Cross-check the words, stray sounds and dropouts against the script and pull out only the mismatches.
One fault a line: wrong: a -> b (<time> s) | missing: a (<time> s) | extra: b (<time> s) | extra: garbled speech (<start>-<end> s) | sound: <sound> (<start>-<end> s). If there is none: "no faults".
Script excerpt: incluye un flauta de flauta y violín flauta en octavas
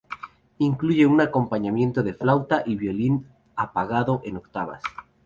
wrong: flauta -> acompañamiento (1.2 s)
wrong: flauta -> apagado (3.5 s)